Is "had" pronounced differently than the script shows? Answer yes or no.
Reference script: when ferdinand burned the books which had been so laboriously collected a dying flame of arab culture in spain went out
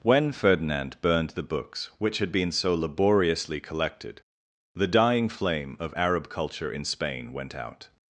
no